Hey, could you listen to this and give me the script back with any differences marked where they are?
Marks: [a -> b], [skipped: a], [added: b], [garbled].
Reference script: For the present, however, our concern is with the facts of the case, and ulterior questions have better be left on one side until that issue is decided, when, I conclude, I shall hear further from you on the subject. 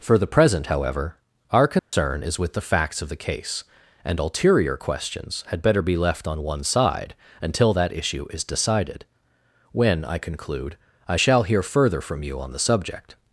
For the present, however, our concern is with the facts of the case, and ulterior questions [have -> had] better be left on one side until that issue is decided, when, I conclude, I shall hear further from you on the subject.